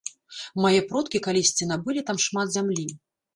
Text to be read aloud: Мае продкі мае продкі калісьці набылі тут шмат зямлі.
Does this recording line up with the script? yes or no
no